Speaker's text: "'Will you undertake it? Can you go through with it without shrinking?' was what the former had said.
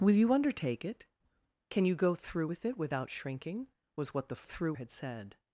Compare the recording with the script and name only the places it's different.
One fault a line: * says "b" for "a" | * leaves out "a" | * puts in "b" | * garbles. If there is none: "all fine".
* says "through" for "former"